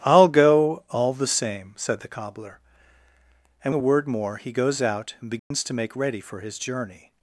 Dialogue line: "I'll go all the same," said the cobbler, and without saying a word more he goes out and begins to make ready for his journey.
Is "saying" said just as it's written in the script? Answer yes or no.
no